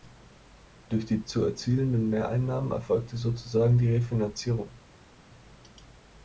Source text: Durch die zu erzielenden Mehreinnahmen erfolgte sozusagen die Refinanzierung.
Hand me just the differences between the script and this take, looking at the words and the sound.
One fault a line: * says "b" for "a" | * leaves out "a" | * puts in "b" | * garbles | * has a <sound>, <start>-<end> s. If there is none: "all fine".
all fine